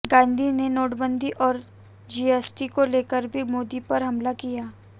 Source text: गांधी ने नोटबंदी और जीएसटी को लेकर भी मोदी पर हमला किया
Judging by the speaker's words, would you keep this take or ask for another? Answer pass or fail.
pass